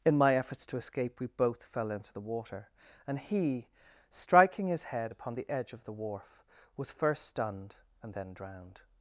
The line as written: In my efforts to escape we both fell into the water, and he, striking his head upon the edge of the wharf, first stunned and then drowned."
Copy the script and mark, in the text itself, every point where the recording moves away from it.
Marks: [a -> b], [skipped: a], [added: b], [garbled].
In my efforts to escape we both fell into the water, and he, striking his head upon the edge of the wharf, [added: was] first stunned and then drowned."